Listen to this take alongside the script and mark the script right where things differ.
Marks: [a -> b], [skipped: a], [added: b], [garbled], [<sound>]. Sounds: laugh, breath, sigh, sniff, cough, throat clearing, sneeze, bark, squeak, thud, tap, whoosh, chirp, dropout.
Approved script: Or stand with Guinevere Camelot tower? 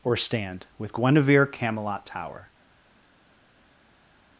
Or stand with Guinevere Camelot tower?